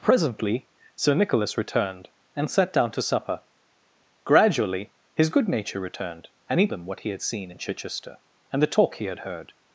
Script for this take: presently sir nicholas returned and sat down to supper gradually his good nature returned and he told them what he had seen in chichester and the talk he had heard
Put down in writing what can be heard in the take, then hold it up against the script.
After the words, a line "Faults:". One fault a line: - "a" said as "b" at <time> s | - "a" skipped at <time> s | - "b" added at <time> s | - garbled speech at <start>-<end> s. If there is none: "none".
presently sir nicholas returned and sat down to supper gradually his good nature returned and he them what he had seen in chichester and the talk he had heard
Faults:
- "told" skipped at 6.7 s